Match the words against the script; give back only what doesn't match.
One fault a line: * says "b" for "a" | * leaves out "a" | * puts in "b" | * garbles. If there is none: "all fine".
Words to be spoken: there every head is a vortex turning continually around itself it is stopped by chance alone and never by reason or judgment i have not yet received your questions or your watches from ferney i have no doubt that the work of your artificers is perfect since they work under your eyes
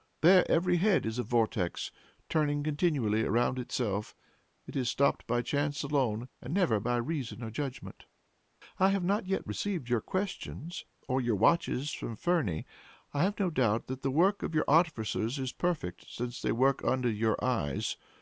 all fine